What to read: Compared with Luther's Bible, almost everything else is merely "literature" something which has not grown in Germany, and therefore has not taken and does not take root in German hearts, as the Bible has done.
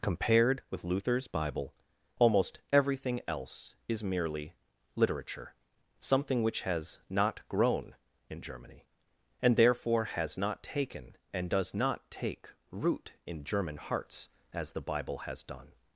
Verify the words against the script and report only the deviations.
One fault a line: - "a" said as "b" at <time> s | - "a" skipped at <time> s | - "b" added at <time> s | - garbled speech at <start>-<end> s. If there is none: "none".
none